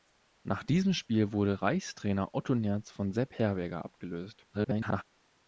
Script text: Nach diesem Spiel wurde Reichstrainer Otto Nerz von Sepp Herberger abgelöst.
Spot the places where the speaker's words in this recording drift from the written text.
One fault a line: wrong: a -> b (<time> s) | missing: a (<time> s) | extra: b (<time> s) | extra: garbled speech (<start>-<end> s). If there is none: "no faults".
extra: garbled speech (4.5-5.0 s)